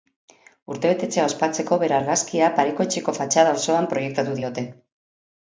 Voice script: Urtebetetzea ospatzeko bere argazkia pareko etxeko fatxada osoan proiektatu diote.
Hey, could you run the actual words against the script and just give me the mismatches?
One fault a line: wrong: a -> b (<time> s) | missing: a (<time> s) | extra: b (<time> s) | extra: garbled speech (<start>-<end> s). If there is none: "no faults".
no faults